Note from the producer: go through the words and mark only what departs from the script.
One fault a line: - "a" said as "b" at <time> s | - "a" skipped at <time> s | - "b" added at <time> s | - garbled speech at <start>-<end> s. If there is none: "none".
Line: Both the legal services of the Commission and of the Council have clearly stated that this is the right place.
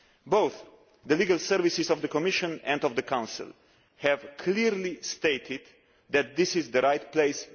none